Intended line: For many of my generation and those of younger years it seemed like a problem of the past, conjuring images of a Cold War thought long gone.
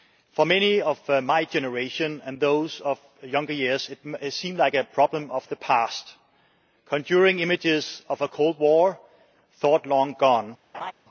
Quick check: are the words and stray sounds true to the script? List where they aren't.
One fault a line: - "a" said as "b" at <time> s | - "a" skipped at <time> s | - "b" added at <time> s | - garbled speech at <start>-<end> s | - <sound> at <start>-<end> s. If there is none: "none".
- laugh at 10.7-10.9 s